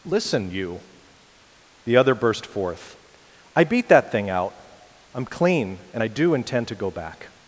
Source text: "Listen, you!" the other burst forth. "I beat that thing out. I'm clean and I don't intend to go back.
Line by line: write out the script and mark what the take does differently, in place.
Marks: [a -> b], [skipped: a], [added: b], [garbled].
"Listen, you!" the other burst forth. "I beat that thing out. I'm clean and I [don't -> do] intend to go back.